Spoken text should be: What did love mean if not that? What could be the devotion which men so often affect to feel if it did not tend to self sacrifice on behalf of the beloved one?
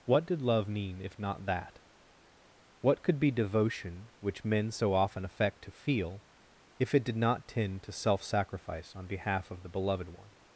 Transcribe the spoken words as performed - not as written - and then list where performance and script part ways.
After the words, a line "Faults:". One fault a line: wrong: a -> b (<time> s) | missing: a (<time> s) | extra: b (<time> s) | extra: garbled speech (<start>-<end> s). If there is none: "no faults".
What did love mean if not that? What could be devotion which men so often affect to feel if it did not tend to self sacrifice on behalf of the beloved one?
Faults:
missing: the (3.3 s)